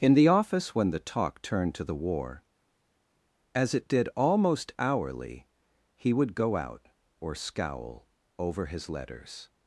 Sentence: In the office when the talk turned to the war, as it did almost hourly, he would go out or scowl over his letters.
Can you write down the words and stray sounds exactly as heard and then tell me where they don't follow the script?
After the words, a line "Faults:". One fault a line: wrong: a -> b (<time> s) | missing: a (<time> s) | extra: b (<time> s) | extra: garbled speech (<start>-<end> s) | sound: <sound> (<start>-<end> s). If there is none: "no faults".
In the office when the talk turned to the war, as it did almost hourly, he would go out or scowl over his letters.
Faults:
no faults